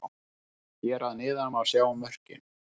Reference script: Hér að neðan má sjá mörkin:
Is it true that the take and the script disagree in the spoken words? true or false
false